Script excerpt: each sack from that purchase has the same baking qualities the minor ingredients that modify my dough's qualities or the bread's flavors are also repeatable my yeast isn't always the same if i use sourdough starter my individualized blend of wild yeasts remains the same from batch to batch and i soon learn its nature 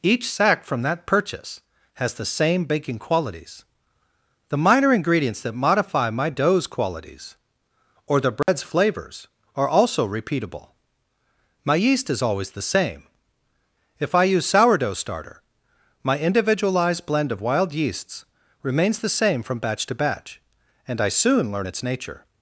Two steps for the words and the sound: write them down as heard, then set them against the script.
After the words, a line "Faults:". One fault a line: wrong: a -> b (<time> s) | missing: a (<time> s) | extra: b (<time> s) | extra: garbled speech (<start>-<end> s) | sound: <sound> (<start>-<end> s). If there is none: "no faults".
each sack from that purchase has the same baking qualities the minor ingredients that modify my dough's qualities or the bread's flavors are also repeatable my yeast is always the same if i use sourdough starter my individualized blend of wild yeasts remains the same from batch to batch and i soon learn its nature
Faults:
sound: dropout (8.4-8.5 s)
wrong: isn't -> is (12.1 s)